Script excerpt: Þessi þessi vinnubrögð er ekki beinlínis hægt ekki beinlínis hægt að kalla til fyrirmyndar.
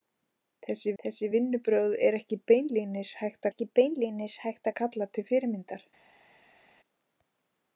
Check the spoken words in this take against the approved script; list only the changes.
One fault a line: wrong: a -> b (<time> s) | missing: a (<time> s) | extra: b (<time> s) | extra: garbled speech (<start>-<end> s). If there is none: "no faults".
no faults